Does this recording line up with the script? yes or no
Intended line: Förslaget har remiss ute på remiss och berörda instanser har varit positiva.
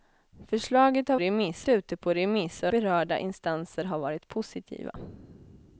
yes